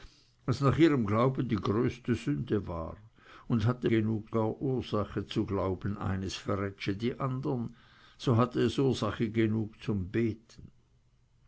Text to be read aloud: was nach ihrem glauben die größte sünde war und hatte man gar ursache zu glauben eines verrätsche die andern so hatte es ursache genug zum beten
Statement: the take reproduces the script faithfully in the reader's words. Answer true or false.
false